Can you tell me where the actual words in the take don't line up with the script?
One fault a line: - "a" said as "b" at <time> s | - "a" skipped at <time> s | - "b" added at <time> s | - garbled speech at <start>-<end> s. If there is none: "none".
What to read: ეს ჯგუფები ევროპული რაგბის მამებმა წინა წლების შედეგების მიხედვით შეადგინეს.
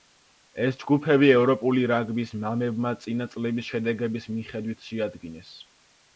none